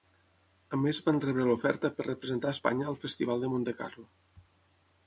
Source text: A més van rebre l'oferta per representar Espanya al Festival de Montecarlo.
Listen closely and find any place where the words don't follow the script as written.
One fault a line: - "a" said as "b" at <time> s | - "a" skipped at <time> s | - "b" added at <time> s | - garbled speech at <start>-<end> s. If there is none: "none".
none